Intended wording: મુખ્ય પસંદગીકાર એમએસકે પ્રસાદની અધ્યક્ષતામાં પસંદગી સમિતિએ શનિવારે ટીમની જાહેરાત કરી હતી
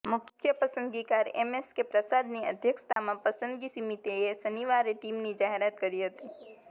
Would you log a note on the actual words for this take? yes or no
no